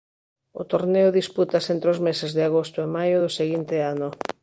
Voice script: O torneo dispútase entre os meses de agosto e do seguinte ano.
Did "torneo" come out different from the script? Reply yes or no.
no